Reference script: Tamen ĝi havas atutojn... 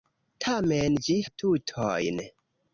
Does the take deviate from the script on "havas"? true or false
true